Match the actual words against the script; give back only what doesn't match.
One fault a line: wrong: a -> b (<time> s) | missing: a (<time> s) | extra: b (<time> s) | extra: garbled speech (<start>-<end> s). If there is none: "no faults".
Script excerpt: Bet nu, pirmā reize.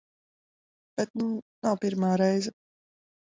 extra: nav (1.7 s)